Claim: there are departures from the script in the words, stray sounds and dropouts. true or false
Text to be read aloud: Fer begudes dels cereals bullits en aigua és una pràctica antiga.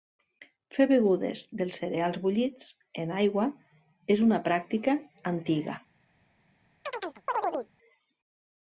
true